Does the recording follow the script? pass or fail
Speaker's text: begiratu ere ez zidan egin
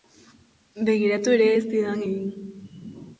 pass